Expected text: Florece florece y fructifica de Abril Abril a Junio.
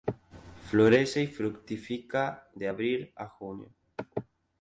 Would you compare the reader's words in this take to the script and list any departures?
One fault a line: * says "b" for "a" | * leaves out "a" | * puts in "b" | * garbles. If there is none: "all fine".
* leaves out "florece"
* leaves out "Abril"